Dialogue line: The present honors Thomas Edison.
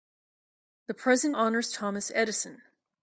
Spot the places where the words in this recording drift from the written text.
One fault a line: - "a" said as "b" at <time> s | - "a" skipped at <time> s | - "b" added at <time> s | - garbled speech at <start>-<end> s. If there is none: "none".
none